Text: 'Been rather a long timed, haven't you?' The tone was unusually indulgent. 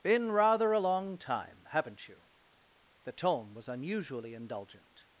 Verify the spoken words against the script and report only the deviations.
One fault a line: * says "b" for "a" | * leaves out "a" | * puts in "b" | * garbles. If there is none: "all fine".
* says "time" for "timed"